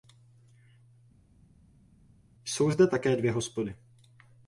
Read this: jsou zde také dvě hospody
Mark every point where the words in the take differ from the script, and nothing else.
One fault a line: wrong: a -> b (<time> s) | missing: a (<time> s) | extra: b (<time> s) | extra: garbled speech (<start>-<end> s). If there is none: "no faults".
no faults